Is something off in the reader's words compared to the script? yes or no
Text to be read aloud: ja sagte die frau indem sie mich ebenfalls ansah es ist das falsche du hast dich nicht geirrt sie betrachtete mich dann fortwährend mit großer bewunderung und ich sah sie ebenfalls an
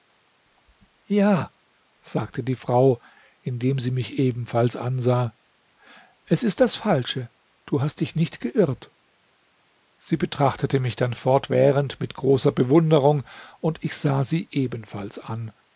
no